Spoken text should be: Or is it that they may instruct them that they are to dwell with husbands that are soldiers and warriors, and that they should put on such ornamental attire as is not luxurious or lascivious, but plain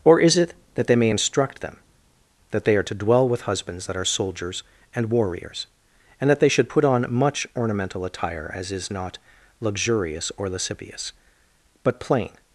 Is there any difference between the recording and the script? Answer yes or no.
yes